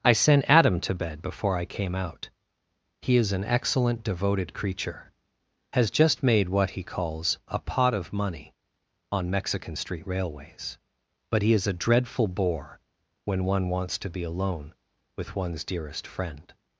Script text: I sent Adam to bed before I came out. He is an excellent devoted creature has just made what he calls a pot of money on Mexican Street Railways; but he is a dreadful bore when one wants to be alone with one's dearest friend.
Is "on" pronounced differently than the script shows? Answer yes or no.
no